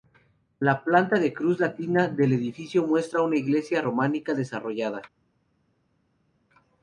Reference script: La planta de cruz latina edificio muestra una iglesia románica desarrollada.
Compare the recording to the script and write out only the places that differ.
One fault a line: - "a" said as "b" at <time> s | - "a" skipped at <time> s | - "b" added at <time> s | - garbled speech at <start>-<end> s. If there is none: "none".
- "del" added at 2.1 s